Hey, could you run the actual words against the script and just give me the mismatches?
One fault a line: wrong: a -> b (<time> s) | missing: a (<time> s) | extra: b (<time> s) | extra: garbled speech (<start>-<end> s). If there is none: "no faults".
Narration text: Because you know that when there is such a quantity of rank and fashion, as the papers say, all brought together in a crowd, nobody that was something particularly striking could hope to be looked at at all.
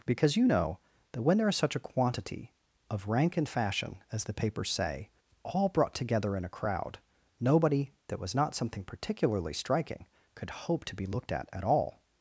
extra: not (8.3 s)